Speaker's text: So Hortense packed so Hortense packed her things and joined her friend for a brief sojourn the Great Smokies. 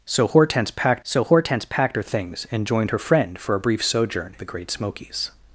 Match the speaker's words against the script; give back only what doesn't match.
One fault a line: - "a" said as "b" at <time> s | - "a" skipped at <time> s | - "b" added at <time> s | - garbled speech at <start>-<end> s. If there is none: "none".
none